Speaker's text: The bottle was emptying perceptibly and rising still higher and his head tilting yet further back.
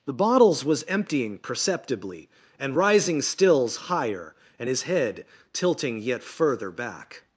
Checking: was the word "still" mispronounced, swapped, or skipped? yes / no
yes